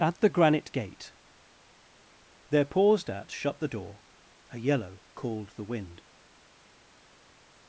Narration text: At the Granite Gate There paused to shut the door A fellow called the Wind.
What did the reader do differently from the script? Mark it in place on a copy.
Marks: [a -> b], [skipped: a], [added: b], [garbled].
At the Granite Gate There paused [to -> at] shut the door A [fellow -> yellow] called the Wind.